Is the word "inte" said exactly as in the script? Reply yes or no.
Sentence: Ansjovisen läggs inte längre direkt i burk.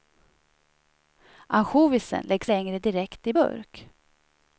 no